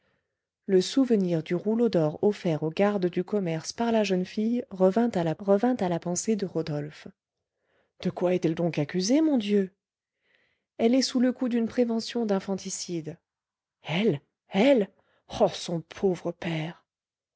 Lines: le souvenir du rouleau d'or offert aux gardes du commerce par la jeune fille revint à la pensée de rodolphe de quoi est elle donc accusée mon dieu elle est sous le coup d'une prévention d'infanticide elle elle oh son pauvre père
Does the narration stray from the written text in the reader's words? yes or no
yes